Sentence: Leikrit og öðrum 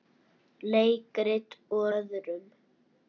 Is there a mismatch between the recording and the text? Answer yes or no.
no